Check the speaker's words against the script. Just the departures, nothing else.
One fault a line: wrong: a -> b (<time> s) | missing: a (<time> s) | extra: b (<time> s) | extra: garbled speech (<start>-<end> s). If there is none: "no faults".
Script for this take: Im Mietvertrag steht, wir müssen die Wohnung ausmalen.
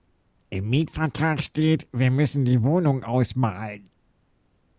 no faults